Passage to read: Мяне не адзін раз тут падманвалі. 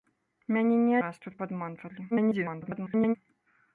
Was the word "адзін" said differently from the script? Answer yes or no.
yes